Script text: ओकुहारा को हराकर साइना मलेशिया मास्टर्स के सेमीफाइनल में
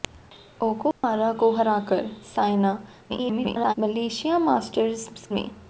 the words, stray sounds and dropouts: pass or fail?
fail